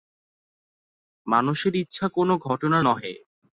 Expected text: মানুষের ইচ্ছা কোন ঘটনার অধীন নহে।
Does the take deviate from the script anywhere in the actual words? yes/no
yes